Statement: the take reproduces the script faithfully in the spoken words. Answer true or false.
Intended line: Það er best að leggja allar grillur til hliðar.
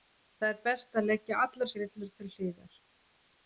true